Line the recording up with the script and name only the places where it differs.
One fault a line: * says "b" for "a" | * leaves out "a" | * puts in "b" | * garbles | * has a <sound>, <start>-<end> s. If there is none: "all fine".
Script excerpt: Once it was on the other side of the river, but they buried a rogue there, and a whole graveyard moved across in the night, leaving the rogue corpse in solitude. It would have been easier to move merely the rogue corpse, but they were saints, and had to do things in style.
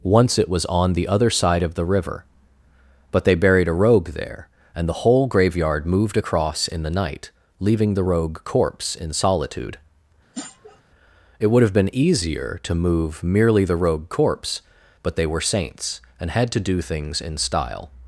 * says "the" for "a"
* has a sniff, 10.3-10.8 s